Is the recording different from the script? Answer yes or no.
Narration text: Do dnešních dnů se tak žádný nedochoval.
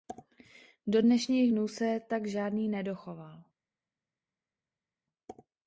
no